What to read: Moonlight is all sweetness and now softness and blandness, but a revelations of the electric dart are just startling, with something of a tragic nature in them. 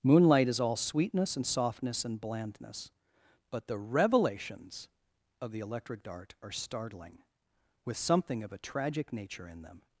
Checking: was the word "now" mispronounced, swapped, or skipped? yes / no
yes